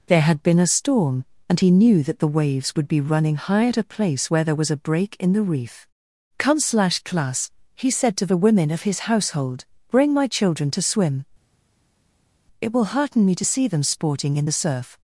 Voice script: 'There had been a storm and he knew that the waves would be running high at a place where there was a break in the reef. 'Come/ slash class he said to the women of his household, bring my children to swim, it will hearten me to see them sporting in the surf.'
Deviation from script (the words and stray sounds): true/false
false